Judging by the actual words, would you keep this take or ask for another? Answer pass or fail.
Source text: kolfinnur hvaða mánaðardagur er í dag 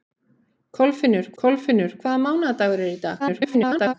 fail